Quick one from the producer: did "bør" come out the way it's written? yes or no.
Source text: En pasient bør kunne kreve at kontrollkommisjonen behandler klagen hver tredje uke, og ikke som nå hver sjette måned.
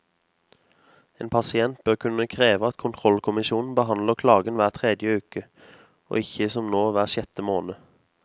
yes